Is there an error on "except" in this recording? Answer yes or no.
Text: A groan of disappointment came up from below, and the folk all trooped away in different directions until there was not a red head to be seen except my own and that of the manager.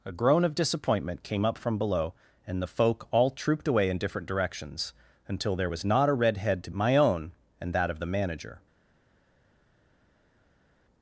yes